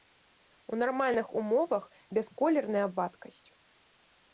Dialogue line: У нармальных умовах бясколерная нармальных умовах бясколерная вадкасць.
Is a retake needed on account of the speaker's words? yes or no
yes